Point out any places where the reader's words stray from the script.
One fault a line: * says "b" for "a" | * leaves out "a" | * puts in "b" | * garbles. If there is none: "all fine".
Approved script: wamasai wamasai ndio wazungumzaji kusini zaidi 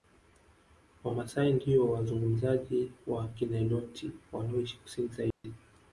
* leaves out "wamasai"
* puts in "wa kiniloti wanaoishi"